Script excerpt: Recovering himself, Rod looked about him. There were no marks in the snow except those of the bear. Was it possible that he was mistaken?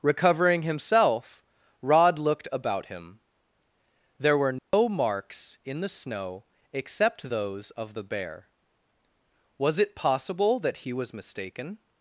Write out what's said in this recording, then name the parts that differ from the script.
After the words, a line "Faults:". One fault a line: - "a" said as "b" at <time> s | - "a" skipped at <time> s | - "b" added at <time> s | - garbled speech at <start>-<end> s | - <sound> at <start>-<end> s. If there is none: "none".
Recovering himself, Rod looked about him. There were no marks in the snow except those of the bear. Was it possible that he was mistaken?
Faults:
- dropout at 4.6-4.7 s